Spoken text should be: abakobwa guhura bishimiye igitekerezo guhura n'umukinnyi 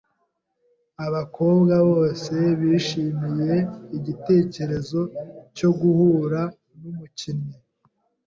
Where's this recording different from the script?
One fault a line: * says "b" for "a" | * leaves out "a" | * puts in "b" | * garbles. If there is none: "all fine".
* says "bose" for "guhura"
* puts in "cyo"